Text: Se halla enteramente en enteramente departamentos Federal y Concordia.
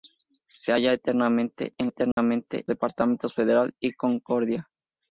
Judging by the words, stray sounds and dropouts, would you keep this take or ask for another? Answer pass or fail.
fail